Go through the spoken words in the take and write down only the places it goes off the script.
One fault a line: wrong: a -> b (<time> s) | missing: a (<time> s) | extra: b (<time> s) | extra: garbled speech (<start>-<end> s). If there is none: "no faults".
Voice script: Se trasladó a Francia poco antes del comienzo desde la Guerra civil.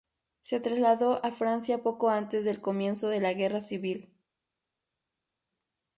wrong: desde -> de (3.1 s)